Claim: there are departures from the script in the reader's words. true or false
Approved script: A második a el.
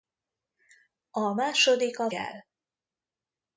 false